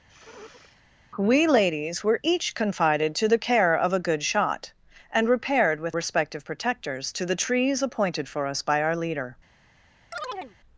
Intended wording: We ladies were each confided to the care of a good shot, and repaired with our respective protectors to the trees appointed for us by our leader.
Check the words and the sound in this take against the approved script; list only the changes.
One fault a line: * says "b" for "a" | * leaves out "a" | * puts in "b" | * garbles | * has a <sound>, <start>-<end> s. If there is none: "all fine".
* has a sniff, 0.1-0.8 s
* leaves out "our"
* has a chirp, 10.1-10.6 s